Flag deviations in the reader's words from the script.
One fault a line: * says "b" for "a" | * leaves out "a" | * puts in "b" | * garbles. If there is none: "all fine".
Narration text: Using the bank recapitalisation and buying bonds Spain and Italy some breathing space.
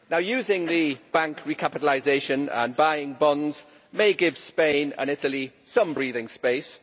* puts in "may give"